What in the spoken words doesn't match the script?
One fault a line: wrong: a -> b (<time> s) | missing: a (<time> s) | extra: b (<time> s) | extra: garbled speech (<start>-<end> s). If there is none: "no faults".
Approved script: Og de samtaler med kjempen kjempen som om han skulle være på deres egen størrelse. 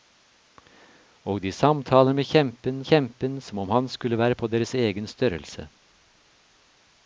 no faults